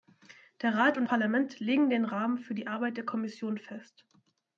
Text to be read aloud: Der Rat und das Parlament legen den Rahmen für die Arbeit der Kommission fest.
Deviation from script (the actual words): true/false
true